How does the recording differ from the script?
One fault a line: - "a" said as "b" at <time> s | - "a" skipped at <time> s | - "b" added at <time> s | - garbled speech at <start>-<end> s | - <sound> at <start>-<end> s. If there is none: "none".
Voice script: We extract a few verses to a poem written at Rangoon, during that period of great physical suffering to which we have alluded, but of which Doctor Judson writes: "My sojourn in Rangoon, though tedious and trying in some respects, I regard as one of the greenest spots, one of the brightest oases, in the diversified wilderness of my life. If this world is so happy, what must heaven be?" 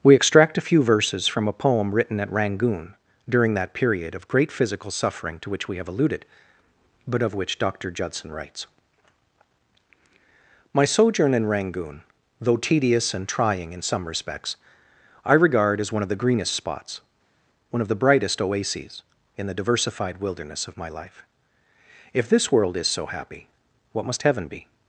- "to" said as "from" at 1.3 s